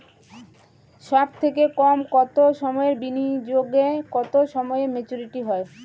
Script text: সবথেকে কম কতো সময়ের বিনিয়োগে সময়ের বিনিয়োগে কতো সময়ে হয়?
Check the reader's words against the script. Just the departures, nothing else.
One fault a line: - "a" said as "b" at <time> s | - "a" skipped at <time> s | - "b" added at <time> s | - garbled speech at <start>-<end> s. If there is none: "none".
- "সময়ের বিনিয়োগে" skipped at 3.8 s
- "মেচুরিটি" added at 4.9 s